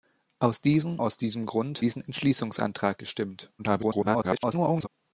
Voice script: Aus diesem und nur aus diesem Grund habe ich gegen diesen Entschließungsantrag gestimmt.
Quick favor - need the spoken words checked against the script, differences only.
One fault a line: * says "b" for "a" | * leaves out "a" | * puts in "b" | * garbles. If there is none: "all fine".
* leaves out "und nur"
* leaves out "habe ich gegen"
* garbles